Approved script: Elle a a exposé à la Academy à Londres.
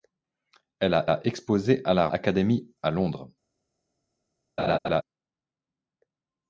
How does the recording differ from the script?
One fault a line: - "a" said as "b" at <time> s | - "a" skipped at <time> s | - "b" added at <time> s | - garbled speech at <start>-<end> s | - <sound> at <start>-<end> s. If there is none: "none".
- laugh at 4.6-5.0 s